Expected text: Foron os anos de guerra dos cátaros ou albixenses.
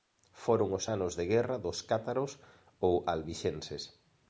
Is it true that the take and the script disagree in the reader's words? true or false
false